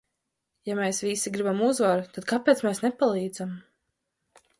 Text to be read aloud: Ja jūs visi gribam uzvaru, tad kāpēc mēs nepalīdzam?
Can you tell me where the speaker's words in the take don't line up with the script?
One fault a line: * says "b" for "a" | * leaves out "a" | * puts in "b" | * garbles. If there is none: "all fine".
* says "mēs" for "jūs"